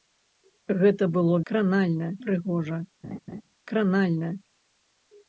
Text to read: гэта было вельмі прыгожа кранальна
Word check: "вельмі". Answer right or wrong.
wrong